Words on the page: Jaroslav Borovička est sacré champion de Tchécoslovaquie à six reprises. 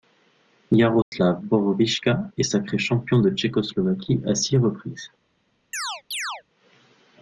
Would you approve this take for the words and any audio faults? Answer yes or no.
no